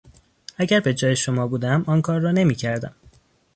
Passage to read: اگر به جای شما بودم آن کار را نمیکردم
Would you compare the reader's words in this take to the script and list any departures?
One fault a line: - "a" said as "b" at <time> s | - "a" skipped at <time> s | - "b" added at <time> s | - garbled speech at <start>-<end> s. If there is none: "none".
none